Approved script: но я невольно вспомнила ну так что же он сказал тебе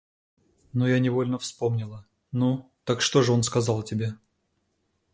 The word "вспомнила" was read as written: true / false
true